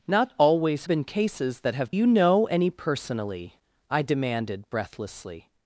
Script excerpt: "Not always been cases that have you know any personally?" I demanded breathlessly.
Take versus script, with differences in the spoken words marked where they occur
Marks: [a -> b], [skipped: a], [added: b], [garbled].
"Not always been cases that have you know any personally?" I demanded breathlessly.